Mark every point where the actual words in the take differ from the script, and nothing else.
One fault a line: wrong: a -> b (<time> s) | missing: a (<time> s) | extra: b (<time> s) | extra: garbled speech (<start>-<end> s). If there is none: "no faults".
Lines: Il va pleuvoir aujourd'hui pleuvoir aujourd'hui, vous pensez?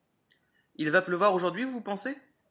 missing: pleuvoir aujourd'hui (1.6 s)